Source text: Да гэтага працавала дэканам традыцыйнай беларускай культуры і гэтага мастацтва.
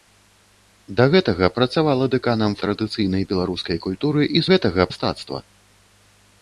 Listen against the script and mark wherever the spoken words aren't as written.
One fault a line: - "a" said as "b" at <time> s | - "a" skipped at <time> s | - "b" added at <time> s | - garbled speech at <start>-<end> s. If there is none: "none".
none